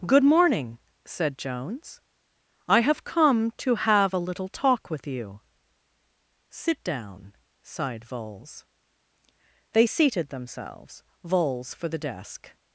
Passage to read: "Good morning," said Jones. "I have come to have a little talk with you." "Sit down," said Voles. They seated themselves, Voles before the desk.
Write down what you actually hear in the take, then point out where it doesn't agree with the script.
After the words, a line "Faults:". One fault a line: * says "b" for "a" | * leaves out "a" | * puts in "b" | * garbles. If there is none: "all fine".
"Good morning," said Jones. "I have come to have a little talk with you." "Sit down," sighed Voles. They seated themselves, Voles for the desk.
Faults:
* says "sighed" for "said"
* says "for" for "before"